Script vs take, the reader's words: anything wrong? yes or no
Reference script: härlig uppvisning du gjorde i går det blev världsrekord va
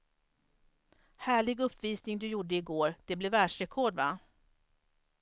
no